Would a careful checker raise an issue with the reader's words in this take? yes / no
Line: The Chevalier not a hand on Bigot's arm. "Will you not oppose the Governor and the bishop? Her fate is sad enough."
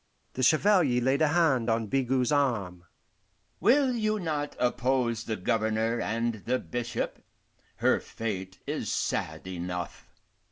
yes